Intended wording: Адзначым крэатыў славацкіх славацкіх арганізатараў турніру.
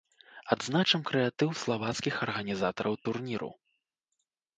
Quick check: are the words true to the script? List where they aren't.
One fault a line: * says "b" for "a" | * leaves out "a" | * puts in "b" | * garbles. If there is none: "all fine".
* leaves out "славацкіх"